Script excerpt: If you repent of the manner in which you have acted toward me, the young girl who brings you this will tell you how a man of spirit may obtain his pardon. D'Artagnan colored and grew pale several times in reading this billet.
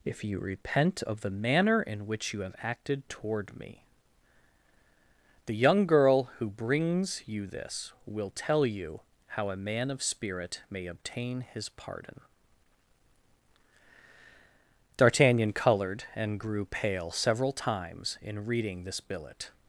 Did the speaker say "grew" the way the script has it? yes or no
yes